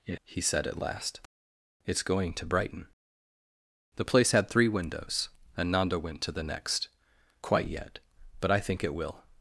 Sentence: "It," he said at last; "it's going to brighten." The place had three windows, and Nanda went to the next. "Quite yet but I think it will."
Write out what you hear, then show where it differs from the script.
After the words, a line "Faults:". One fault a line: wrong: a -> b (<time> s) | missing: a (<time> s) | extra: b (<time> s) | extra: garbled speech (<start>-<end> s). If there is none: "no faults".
"It," he said at last; "it's going to brighten." The place had three windows, and Nanda went to the next. "Quite yet but I think it will."
Faults:
no faults